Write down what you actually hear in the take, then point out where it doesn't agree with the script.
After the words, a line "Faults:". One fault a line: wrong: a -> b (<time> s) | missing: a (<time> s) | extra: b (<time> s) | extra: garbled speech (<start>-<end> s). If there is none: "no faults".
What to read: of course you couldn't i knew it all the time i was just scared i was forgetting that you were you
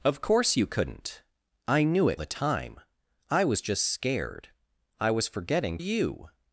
of course you couldn't i knew it the time i was just scared i was forgetting you
Faults:
missing: all (2.2 s)
missing: that you were (5.8 s)